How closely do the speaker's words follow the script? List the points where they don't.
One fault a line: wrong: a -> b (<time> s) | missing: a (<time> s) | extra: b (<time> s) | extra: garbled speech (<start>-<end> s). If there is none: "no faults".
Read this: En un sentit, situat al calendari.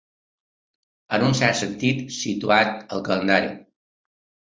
extra: cert (1.4 s)